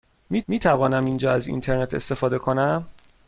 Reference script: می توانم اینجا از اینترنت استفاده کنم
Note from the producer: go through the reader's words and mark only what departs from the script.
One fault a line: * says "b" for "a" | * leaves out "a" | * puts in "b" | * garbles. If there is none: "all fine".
* puts in "می"